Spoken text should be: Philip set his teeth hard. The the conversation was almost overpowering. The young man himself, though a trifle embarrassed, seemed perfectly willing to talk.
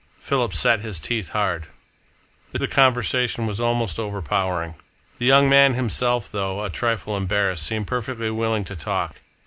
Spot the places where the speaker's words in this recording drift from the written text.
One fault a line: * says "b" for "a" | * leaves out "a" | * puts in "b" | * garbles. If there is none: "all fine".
all fine